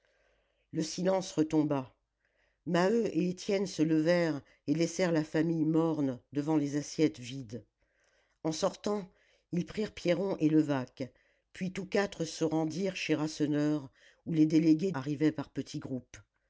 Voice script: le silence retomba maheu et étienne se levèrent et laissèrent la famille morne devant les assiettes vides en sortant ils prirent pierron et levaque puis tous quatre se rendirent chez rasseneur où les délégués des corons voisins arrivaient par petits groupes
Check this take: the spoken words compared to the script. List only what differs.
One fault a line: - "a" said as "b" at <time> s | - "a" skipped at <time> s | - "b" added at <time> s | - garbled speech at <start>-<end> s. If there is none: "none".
- "des corons voisins" skipped at 14.9 s